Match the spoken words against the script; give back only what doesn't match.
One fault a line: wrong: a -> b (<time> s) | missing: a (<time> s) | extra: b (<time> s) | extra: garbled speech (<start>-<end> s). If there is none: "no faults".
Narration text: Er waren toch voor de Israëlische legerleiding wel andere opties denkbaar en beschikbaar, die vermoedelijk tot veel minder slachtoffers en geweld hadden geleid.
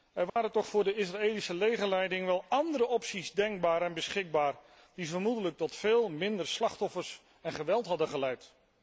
no faults